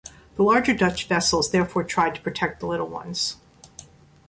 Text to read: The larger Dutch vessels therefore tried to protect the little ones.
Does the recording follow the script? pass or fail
pass